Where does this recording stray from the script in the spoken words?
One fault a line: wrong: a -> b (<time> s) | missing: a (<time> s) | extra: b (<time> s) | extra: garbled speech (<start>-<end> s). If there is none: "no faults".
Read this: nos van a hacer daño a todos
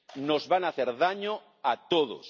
no faults